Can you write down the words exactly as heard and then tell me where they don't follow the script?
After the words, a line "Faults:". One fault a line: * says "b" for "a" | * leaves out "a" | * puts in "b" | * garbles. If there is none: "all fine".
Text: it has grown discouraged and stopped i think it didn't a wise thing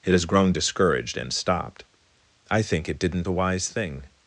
it has grown discouraged and stopped i think it didn't a wise thing
Faults:
all fine